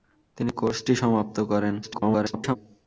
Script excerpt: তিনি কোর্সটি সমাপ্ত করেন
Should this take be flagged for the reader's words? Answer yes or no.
yes